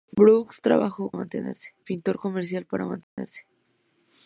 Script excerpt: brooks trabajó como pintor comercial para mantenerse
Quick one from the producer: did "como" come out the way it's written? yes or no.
no